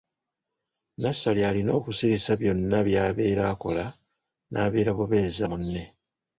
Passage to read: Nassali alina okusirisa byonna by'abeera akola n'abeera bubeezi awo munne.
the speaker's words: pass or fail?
fail